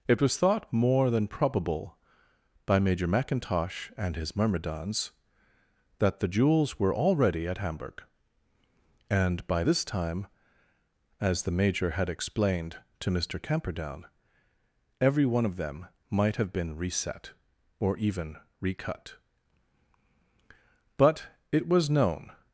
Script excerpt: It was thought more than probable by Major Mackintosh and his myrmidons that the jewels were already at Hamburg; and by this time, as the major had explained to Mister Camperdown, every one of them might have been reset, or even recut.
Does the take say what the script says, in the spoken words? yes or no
no